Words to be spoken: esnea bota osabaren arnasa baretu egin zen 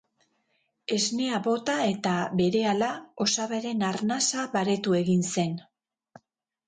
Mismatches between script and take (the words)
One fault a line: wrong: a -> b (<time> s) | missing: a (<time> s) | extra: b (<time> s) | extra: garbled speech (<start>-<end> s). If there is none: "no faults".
extra: eta berehala (1.9 s)